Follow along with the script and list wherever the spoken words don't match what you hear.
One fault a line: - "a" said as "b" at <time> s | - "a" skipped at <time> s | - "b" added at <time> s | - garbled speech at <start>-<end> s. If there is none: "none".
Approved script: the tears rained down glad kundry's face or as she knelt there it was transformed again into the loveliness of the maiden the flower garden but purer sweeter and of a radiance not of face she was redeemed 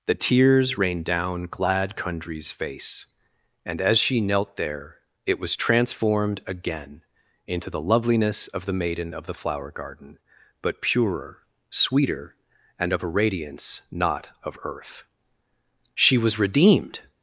- "or" said as "and" at 3.6 s
- "of" added at 9.1 s
- "face" said as "earth" at 14.6 s